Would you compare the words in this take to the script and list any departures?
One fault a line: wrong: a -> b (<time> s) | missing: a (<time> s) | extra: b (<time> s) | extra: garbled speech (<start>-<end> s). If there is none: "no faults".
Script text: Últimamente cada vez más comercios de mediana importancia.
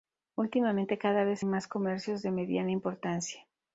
no faults